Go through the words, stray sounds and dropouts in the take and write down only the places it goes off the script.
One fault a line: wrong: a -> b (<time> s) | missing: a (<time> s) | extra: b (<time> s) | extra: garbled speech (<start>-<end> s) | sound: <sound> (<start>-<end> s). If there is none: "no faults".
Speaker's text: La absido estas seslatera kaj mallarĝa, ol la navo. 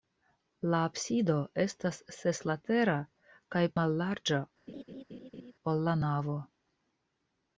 sound: laugh (4.7-5.5 s)